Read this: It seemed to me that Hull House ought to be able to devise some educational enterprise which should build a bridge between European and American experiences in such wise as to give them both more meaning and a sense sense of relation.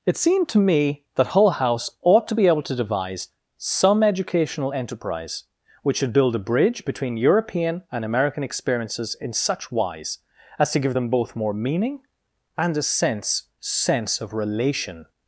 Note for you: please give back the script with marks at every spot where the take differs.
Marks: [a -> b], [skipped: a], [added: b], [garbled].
It seemed to me that Hull House ought to be able to devise some educational enterprise which should build a bridge between European and American experiences in such wise as to give them both more meaning and a sense sense of relation.